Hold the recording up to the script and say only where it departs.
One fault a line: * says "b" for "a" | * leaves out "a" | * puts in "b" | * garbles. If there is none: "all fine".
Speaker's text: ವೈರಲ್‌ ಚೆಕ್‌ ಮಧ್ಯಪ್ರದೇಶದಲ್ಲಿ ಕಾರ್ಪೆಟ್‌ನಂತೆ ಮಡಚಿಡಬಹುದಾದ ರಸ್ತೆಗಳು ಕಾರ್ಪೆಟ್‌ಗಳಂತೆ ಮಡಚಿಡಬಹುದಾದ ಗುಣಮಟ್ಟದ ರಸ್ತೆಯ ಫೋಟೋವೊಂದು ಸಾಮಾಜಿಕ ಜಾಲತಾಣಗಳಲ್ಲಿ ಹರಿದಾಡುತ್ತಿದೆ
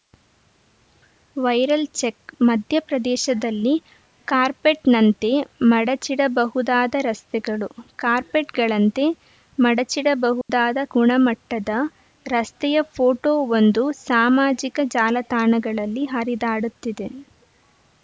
all fine